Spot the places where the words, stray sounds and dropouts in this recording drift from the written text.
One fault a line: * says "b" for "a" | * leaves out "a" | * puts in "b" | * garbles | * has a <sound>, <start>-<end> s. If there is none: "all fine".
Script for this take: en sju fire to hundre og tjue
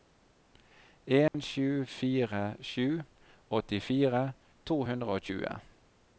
* has a dropout, 1.3-1.3 s
* puts in "sju åttifire"